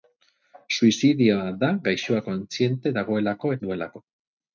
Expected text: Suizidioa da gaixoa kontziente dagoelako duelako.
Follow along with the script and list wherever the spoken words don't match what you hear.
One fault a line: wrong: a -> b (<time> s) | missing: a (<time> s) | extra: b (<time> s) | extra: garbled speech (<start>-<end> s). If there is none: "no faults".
no faults